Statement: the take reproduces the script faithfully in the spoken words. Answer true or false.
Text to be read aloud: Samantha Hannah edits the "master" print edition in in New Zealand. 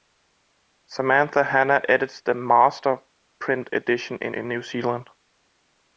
true